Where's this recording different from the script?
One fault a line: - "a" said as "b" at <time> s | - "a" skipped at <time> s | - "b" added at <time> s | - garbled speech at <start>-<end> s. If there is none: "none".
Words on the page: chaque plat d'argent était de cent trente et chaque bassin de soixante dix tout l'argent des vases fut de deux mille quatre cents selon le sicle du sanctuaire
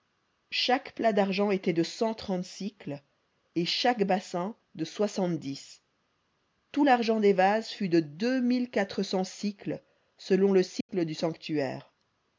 none